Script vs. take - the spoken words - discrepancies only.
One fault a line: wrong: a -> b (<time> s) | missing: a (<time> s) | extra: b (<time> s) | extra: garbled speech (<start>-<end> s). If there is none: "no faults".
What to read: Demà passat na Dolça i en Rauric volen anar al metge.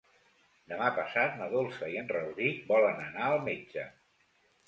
no faults